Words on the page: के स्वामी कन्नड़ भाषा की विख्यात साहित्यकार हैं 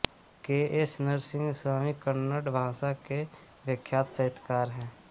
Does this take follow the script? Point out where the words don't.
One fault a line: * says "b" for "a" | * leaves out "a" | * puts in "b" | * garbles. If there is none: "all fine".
* puts in "एस नरसिंह"
* says "के" for "की"